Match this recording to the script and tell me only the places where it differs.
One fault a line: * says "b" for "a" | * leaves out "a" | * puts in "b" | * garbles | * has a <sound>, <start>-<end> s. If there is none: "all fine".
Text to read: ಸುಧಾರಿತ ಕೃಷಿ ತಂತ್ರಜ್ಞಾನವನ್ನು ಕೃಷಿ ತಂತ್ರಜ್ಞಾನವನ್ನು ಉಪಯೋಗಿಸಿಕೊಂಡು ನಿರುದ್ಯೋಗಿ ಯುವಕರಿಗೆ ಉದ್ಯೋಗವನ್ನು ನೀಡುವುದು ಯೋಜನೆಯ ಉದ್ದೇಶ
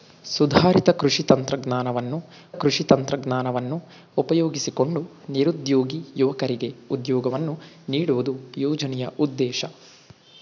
all fine